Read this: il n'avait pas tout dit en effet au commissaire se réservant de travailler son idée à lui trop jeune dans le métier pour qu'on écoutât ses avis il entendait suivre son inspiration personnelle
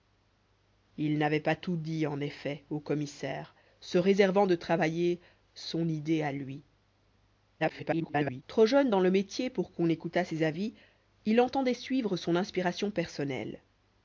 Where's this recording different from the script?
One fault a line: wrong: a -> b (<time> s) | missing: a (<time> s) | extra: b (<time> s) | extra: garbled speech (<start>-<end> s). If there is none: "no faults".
extra: garbled speech (7.6-8.4 s)